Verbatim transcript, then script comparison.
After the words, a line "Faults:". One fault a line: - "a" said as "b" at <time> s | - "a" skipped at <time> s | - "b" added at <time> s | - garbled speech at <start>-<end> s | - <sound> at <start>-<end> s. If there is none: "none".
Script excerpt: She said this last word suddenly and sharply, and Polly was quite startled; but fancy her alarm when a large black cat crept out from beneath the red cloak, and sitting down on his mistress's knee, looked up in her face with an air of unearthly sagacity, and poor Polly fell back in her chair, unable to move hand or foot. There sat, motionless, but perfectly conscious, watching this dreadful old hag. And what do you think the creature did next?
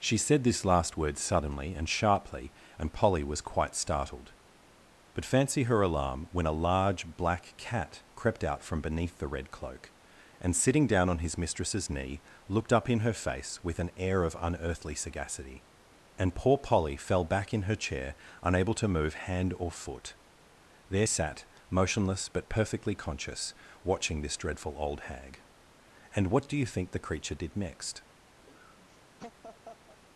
She said this last word suddenly and sharply, and Polly was quite startled; but fancy her alarm when a large black cat crept out from beneath the red cloak, and sitting down on his mistress's knee, looked up in her face with an air of unearthly sagacity, and poor Polly fell back in her chair, unable to move hand or foot. There sat, motionless, but perfectly conscious, watching this dreadful old hag. And what do you think the creature did next?
Faults:
- laugh at 28.4-30.0 s